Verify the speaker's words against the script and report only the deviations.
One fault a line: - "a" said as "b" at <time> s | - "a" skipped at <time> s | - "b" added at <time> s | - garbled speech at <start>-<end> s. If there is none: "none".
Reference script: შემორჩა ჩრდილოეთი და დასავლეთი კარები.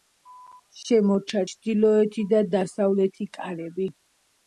none